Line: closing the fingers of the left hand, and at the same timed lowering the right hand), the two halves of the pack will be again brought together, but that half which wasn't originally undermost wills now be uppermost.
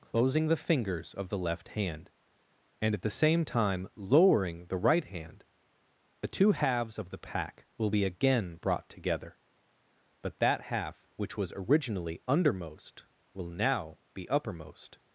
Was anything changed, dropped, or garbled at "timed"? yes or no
yes